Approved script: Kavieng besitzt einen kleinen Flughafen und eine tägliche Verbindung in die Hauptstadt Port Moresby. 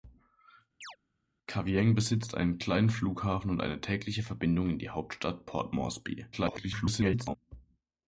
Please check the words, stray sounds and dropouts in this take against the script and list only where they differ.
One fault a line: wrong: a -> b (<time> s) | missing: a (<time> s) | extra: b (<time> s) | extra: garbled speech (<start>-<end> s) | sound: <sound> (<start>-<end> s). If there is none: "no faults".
sound: chirp (0.8-1.0 s)
extra: garbled speech (6.3-7.4 s)